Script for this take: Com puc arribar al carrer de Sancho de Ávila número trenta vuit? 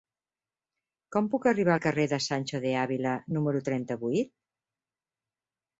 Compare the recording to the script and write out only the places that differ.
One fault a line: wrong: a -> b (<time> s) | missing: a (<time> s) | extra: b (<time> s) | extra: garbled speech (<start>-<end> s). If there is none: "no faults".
no faults